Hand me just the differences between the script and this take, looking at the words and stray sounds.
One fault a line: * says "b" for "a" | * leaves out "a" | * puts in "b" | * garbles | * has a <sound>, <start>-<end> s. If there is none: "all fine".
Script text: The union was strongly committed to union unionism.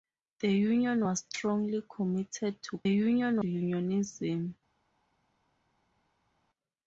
all fine